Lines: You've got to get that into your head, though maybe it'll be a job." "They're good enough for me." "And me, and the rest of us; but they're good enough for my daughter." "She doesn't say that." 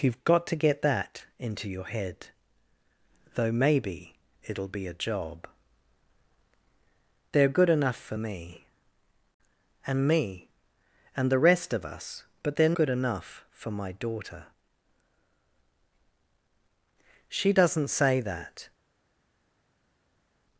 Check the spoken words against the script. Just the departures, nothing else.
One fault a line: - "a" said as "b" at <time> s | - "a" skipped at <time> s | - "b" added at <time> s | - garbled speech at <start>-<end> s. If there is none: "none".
none